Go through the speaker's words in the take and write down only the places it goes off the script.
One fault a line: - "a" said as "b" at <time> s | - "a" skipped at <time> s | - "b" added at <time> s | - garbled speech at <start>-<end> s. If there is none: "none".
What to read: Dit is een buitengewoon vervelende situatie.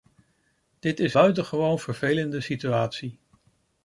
- "een" skipped at 1.1 s